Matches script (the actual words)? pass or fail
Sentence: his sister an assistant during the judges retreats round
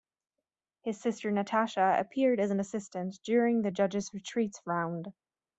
fail